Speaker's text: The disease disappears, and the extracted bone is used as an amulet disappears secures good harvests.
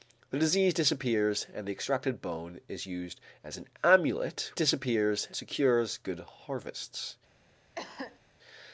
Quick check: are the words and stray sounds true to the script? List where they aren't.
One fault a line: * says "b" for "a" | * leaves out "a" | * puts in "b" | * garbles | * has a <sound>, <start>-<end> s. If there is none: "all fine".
* has a cough, 7.7-8.2 s